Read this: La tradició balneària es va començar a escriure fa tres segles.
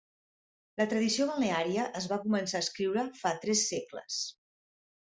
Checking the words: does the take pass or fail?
pass